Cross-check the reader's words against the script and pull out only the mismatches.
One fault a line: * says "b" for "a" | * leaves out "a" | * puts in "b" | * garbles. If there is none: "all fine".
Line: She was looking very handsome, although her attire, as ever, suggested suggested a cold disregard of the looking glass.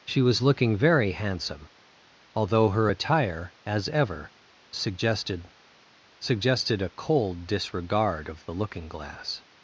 all fine